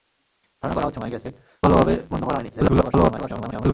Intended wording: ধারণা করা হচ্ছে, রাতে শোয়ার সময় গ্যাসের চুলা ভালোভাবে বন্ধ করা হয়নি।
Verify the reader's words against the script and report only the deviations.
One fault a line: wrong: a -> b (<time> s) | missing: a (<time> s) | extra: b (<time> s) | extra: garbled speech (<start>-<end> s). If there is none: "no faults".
missing: রাতে শোয়ার (1.0 s)
missing: চুলা (1.3 s)
extra: garbled speech (2.5-3.7 s)